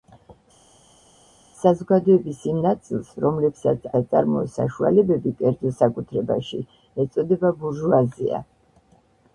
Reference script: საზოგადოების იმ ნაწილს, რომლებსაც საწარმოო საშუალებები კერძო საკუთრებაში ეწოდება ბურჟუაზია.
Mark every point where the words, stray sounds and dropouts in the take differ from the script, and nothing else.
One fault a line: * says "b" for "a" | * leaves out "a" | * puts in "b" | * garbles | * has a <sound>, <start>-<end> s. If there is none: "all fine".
all fine